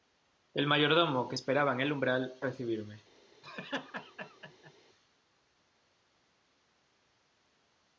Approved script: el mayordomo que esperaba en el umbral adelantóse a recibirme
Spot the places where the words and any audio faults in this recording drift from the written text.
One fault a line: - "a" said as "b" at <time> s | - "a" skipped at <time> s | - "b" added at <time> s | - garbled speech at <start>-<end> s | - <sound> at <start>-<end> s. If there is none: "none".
- "adelantóse" skipped at 2.3 s
- laugh at 3.4-4.7 s